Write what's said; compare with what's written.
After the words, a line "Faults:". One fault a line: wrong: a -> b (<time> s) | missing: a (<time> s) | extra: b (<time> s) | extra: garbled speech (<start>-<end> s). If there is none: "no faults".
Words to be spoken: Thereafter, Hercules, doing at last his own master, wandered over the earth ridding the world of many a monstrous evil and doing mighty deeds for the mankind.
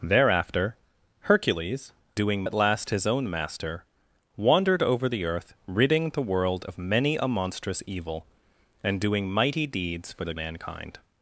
Thereafter, Hercules, doing at last his own master, wandered over the earth ridding the world of many a monstrous evil and doing mighty deeds for the mankind.
Faults:
no faults